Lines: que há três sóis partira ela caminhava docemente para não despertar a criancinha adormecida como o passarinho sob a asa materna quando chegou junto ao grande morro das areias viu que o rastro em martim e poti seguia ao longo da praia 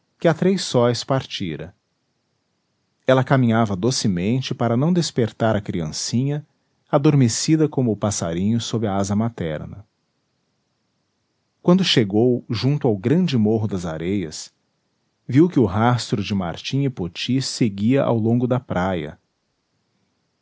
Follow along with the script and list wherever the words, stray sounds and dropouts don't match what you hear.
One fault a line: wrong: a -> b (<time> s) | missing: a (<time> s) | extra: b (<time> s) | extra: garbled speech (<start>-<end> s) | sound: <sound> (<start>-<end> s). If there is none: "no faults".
wrong: em -> de (16.2 s)